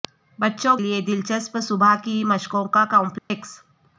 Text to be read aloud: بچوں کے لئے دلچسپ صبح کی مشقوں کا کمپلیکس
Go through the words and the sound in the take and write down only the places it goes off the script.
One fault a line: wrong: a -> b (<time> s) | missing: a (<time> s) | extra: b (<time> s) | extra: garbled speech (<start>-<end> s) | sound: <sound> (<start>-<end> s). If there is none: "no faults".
missing: کے (0.8 s)
sound: dropout (3.2-3.3 s)